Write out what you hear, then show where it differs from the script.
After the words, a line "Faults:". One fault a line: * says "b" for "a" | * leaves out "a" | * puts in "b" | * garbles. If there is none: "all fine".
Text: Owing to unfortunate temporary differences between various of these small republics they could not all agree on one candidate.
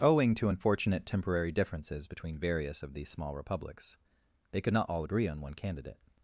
Owing to unfortunate temporary differences between various of these small republics they could not all agree on one candidate.
Faults:
all fine